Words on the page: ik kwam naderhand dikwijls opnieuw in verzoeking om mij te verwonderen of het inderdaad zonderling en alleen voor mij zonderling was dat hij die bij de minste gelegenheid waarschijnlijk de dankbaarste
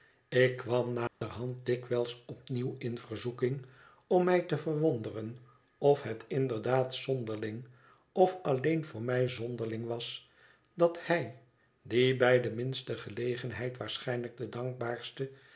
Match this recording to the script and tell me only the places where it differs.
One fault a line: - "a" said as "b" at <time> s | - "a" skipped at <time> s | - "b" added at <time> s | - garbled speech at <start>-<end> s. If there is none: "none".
- "en" said as "of" at 8.1 s